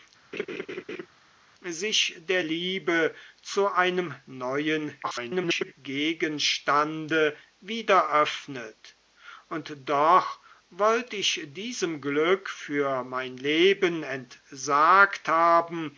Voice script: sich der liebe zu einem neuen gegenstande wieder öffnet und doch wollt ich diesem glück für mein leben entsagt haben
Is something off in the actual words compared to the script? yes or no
yes